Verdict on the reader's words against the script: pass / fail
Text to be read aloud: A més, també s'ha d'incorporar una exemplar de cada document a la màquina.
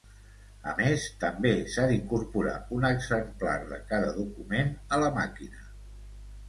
fail